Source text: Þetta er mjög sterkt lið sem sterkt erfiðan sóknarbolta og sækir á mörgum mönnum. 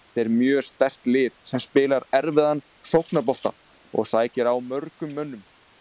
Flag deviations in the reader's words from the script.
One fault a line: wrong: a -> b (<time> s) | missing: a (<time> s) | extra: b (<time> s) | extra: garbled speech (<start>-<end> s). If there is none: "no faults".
wrong: sterkt -> spilar (1.6 s)